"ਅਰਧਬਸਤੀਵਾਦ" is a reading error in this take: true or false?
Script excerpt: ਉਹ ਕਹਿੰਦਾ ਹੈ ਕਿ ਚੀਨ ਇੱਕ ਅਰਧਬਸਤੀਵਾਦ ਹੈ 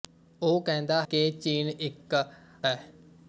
true